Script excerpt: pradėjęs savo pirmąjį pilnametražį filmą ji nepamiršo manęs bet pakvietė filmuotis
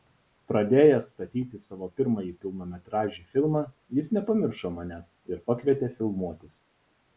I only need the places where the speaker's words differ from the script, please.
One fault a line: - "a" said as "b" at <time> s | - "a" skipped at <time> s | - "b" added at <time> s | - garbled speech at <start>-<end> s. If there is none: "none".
- "statyti" added at 1.1 s
- "ji" said as "jis" at 4.0 s
- "bet" said as "ir" at 5.3 s